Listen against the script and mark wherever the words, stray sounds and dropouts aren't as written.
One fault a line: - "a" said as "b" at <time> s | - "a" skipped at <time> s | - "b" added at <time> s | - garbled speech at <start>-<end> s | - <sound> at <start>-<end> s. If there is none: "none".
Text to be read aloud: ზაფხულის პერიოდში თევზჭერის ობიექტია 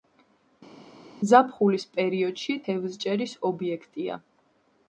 none